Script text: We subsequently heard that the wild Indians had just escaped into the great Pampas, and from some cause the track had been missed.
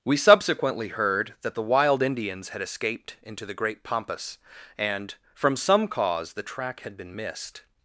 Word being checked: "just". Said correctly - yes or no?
no